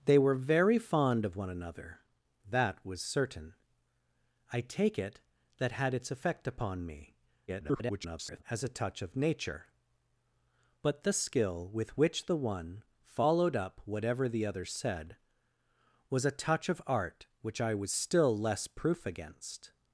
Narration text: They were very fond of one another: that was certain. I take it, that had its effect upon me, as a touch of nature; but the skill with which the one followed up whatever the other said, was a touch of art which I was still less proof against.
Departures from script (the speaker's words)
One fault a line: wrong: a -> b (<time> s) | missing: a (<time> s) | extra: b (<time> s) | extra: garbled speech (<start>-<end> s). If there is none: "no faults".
extra: garbled speech (7.5-8.4 s)